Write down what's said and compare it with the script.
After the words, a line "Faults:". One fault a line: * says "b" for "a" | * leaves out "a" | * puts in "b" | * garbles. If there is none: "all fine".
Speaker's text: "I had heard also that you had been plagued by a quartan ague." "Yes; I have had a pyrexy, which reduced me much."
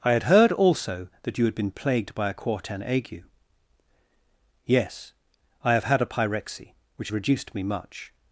"I had heard also that you had been plagued by a quartan ague." "Yes; I have had a pyrexy, which reduced me much."
Faults:
all fine